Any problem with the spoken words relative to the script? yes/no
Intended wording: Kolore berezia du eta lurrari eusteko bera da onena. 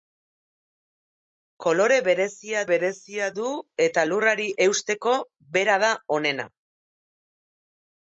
yes